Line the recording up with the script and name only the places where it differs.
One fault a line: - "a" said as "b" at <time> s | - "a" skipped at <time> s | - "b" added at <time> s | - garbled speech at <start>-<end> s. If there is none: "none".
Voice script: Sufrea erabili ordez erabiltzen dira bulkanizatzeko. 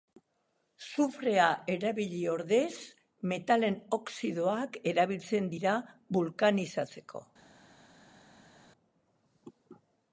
- "metalen oxidoak" added at 3.3 s